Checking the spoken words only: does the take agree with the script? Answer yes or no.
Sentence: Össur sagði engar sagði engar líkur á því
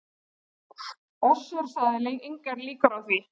no